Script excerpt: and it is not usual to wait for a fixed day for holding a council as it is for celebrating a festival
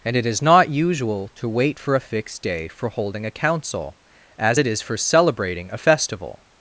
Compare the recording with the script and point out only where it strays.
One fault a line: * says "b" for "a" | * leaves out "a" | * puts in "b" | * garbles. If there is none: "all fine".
all fine